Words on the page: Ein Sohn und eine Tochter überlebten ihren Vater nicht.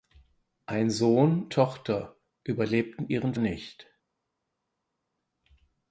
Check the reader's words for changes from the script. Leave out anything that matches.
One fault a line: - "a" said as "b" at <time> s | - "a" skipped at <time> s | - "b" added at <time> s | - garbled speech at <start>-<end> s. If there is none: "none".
- "und eine" skipped at 1.5 s
- "Vater" skipped at 3.4 s